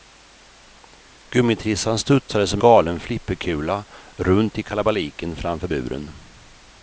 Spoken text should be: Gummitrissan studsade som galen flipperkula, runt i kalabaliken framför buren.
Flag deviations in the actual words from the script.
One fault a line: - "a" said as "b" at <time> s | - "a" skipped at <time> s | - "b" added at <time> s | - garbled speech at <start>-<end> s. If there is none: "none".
none